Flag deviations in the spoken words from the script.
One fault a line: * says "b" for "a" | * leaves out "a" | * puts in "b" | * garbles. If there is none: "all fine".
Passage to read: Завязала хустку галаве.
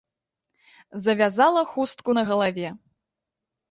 * puts in "на"